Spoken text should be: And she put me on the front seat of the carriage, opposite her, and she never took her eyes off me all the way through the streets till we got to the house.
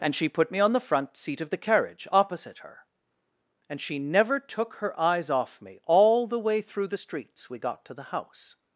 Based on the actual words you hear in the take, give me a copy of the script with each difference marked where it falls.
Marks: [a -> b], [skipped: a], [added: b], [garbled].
And she put me on the front seat of the carriage, opposite her, and she never took her eyes off me all the way through the streets [skipped: till] we got to the house.